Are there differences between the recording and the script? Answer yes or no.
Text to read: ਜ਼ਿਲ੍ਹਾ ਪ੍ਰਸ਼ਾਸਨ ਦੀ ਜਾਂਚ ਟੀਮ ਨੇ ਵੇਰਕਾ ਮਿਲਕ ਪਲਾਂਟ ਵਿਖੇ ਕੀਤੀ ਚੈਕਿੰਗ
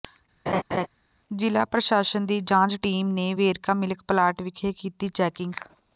no